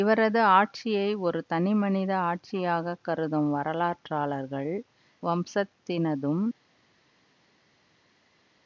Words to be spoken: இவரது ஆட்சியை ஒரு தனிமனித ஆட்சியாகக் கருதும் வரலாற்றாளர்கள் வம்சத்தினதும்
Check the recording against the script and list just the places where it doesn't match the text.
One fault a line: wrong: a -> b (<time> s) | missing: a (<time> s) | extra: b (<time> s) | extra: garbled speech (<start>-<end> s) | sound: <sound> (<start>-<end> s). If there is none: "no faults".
no faults